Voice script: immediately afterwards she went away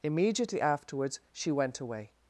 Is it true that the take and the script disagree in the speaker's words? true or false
false